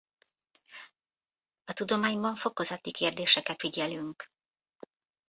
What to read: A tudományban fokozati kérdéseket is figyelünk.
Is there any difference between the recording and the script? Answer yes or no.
yes